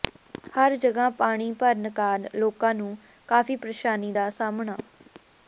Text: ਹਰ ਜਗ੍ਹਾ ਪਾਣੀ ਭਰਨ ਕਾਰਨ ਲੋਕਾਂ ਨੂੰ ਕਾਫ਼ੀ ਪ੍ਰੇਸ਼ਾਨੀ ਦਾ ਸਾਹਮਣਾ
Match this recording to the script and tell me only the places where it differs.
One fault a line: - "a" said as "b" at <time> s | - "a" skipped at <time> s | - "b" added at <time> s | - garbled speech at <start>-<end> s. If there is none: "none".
none